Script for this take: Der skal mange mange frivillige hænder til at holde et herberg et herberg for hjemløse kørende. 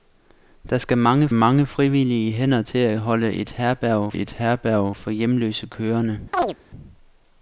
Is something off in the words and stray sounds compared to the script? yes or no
yes